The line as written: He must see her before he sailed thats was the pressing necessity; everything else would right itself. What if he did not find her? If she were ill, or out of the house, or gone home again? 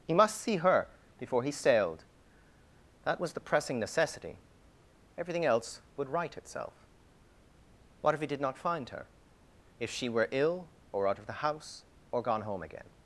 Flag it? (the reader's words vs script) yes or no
yes